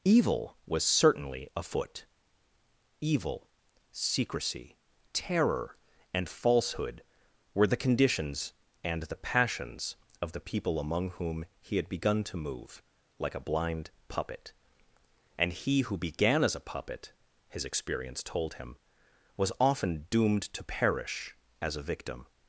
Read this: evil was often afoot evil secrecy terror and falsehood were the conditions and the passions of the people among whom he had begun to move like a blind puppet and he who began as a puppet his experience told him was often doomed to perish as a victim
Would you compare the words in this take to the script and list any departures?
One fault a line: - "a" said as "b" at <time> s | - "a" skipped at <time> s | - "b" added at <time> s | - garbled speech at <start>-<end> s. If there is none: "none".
- "often" said as "certainly" at 0.8 s